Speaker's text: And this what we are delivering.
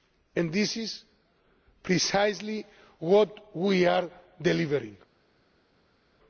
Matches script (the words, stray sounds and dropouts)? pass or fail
fail